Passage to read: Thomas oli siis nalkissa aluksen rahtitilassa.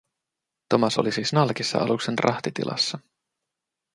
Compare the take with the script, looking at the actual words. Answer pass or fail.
pass